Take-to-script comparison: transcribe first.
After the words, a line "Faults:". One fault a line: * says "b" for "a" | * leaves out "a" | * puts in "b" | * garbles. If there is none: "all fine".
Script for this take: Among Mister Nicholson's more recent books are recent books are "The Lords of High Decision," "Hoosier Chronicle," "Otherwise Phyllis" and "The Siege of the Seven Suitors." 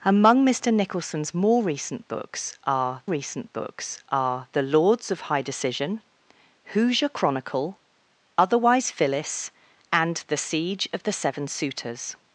Among Mister Nicholson's more recent books are recent books are "The Lords of High Decision," "Hoosier Chronicle," "Otherwise Phyllis" and "The Siege of the Seven Suitors."
Faults:
all fine